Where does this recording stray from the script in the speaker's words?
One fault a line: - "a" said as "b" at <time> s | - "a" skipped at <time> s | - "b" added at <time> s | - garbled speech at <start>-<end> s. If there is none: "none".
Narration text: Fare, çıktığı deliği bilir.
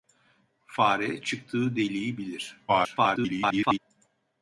- garbled speech at 2.7-3.8 s